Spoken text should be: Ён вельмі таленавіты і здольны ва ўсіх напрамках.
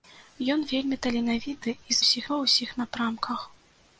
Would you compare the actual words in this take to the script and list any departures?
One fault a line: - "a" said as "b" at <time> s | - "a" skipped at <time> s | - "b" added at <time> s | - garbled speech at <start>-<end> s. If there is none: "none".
- "здольны" said as "ўсіх" at 2.0 s